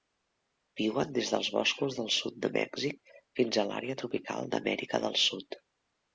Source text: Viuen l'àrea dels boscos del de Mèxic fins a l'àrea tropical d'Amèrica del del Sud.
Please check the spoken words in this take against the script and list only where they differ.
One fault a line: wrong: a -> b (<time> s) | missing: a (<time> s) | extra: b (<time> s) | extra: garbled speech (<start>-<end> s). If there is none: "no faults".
wrong: l'àrea -> des (1.2 s)
extra: sud (2.1 s)
missing: del (5.2 s)